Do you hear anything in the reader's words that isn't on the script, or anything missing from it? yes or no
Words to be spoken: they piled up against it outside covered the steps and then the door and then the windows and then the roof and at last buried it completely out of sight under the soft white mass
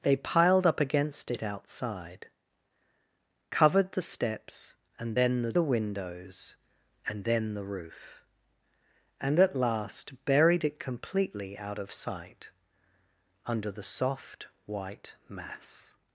yes